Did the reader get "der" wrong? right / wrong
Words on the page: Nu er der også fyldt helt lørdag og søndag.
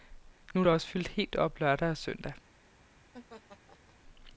right